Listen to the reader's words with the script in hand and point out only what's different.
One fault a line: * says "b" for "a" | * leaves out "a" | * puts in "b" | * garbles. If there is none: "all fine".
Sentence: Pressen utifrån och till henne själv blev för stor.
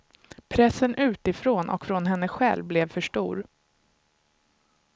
* says "från" for "till"